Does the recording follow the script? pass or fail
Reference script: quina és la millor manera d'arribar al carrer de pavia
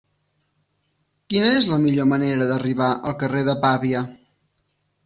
pass